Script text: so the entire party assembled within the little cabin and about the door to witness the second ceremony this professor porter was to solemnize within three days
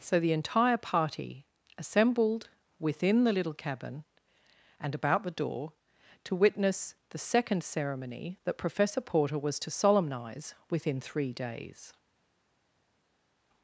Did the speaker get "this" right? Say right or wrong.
wrong